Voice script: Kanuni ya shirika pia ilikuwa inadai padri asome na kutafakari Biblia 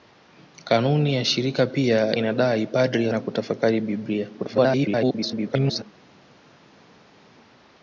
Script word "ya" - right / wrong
right